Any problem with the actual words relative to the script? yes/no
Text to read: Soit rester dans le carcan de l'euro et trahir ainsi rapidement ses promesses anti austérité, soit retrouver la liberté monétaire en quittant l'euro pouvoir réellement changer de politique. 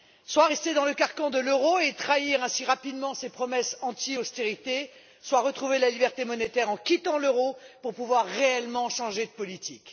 yes